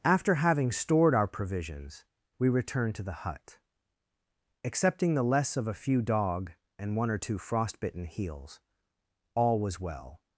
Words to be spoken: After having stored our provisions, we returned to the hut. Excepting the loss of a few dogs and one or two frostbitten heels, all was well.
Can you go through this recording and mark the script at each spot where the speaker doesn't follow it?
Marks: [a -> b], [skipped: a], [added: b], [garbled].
After having stored our provisions, we returned to the hut. Excepting the [loss -> less] of a few [dogs -> dog] and one or two frostbitten heels, all was well.